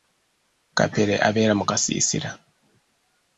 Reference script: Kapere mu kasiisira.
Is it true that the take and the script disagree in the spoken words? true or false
true